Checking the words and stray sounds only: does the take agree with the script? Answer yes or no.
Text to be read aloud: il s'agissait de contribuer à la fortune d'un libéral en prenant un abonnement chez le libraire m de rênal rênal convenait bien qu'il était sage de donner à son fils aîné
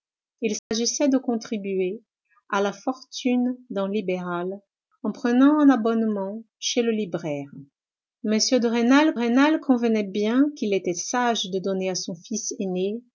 no